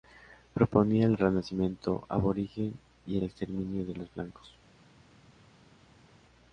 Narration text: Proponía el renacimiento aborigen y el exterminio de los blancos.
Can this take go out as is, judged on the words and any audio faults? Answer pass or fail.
pass